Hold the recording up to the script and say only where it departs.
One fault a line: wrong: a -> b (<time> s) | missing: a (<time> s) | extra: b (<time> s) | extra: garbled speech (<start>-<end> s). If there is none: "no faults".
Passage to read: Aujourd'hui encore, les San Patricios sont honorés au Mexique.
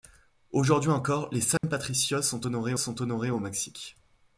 extra: sont honorés (2.8 s)